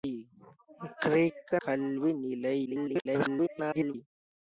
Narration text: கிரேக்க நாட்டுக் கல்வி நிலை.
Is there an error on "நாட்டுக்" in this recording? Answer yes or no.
yes